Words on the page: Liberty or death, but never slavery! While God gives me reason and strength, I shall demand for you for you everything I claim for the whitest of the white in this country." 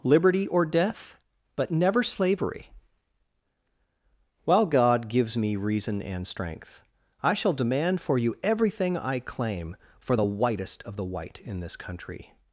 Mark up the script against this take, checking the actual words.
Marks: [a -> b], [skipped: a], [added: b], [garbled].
Liberty or death, but never slavery! While God gives me reason and strength, I shall demand for you [skipped: for you] everything I claim for the whitest of the white in this country."